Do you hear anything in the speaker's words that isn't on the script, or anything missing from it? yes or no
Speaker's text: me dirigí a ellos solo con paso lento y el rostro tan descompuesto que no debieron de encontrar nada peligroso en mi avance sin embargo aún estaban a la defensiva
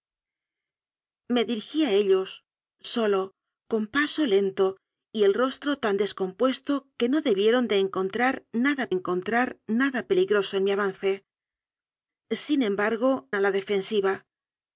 yes